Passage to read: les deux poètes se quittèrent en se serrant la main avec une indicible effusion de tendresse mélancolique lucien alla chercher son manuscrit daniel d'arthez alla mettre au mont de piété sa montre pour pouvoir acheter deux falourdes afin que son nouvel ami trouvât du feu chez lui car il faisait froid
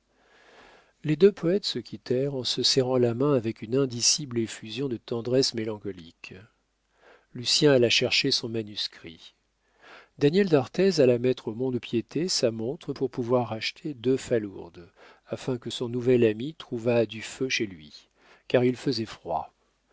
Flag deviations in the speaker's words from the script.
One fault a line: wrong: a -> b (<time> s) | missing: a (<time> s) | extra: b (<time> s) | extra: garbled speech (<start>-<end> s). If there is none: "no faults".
no faults